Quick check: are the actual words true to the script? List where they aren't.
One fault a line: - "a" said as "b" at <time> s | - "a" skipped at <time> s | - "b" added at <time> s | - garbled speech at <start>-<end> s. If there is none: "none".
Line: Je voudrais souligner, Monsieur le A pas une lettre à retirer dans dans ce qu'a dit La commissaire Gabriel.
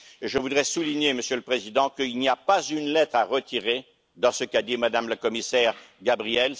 - "Président qu'il n'y" added at 1.4 s
- "dans" skipped at 4.3 s
- "Mme" added at 4.8 s